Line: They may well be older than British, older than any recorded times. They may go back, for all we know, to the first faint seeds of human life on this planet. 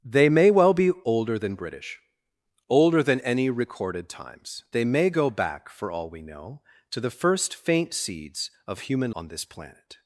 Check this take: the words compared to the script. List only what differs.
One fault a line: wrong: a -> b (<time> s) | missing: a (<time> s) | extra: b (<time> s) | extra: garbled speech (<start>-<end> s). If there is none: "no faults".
missing: life (9.1 s)